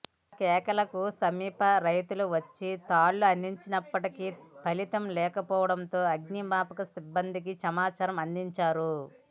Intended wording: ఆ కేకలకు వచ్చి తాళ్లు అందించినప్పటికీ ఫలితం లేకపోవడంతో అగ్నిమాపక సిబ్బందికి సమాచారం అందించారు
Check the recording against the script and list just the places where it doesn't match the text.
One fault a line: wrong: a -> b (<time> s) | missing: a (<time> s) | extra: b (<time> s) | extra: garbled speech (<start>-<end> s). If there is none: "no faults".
extra: సమీప రైతులు (1.2 s)